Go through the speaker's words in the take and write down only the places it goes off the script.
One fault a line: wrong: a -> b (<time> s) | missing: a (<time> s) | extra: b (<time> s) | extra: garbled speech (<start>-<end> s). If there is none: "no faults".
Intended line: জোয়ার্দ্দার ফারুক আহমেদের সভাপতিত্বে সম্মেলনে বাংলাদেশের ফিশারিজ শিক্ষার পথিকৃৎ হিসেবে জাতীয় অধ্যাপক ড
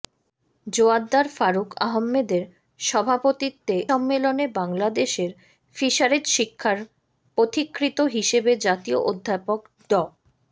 no faults